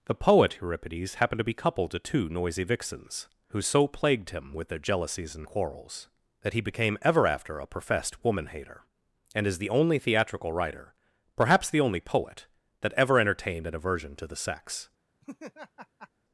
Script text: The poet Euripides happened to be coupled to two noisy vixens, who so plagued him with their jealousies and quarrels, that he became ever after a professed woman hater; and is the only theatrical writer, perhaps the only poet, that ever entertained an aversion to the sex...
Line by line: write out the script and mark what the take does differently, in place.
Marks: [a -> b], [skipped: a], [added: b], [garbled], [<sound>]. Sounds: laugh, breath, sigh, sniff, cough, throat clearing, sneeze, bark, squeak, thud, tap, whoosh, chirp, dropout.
The poet Euripides happened to be coupled to two noisy vixens, who so plagued him with their jealousies and quarrels, that he became ever after a professed woman hater; and is the only theatrical writer, perhaps the only poet, that ever entertained an aversion to the sex... [laugh]